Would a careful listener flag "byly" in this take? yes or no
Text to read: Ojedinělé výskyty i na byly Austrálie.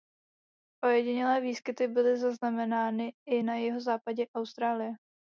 yes